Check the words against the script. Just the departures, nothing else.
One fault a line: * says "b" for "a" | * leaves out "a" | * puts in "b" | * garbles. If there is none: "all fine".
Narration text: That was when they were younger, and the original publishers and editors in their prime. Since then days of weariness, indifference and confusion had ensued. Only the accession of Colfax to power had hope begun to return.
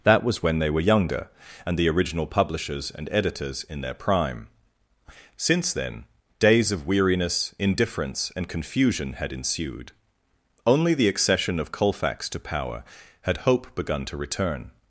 all fine